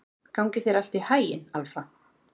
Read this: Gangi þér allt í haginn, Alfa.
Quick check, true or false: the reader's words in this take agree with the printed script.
true